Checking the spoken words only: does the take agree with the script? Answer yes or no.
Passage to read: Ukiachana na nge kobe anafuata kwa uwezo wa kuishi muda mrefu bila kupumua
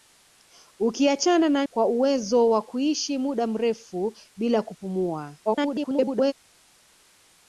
no